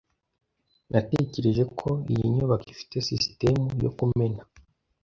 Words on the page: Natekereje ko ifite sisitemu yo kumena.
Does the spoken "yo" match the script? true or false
true